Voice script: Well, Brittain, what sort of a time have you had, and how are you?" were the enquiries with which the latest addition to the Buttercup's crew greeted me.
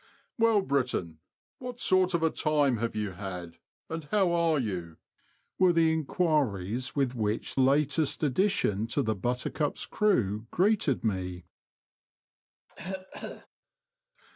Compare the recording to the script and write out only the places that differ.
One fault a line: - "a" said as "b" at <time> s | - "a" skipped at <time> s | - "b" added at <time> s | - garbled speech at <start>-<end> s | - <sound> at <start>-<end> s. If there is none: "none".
- "the" skipped at 7.6 s
- cough at 12.7-13.5 s